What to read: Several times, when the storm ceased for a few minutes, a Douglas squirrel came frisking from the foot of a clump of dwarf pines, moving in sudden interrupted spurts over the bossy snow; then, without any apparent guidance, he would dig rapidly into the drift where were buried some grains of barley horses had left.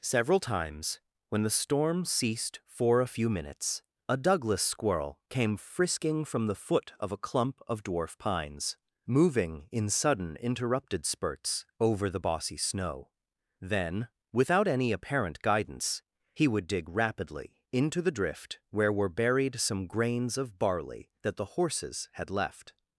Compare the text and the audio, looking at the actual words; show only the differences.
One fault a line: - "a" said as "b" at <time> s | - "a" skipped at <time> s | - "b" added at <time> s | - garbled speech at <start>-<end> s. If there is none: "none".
- "that the" added at 21.2 s